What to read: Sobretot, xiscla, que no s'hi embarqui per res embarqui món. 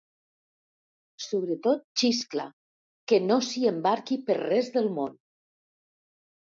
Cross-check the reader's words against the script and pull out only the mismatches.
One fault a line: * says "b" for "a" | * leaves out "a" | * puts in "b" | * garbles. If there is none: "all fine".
* says "del" for "embarqui"